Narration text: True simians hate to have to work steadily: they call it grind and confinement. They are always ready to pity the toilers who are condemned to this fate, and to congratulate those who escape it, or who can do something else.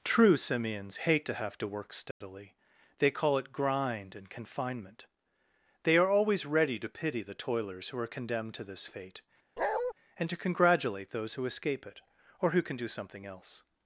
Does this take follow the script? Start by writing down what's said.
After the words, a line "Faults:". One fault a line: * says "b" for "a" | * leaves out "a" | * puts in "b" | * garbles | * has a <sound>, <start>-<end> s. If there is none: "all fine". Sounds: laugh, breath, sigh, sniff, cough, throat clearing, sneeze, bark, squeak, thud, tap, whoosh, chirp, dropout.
True simians hate to have to work steadily: they call it grind and confinement. They are always ready to pity the toilers who are condemned to this fate, and to congratulate those who escape it, or who can do something else.
Faults:
* has a dropout, 2.1-2.2 s
* has a bark, 9.6-9.9 s